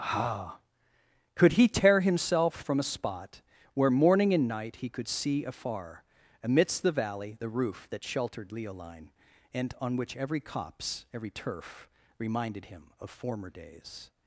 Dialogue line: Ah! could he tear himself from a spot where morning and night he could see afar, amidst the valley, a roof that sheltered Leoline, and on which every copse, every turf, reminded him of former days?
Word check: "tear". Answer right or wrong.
right